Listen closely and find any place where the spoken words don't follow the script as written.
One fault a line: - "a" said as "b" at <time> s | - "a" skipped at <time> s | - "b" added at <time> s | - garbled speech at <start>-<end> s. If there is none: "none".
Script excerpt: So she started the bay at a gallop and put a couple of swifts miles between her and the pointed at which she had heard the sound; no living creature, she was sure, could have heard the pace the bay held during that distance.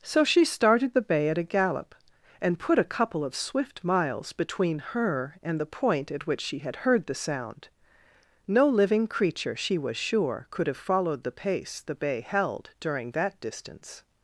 - "swifts" said as "swift" at 3.4 s
- "pointed" said as "point" at 5.7 s
- "heard" said as "followed" at 10.8 s